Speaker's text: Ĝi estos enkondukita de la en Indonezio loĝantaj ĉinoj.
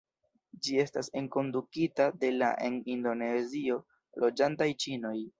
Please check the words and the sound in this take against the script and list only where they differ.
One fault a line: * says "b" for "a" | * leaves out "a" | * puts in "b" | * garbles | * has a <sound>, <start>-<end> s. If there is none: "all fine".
* says "estas" for "estos"